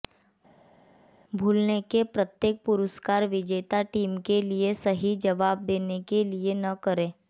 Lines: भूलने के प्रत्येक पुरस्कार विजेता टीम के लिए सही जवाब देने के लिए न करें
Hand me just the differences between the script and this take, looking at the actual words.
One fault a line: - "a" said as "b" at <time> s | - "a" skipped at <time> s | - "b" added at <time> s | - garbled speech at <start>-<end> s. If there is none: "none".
none